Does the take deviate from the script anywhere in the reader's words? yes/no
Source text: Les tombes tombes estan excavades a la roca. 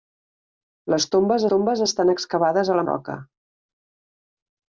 no